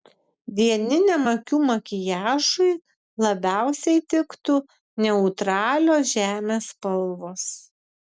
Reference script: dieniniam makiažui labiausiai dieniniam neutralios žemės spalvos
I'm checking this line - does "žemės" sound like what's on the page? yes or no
yes